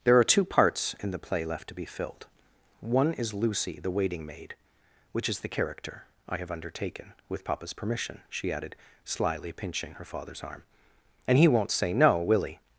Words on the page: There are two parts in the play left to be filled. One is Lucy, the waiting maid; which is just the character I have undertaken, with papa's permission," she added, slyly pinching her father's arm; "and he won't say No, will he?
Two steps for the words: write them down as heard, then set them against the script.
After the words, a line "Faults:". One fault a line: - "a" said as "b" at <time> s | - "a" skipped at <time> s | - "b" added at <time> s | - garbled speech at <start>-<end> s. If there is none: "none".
There are two parts in the play left to be filled. One is Lucy, the waiting maid; which is the character I have undertaken, with papa's permission," she added, slyly pinching her father's arm; "and he won't say No, will he?
Faults:
- "just" skipped at 5.4 s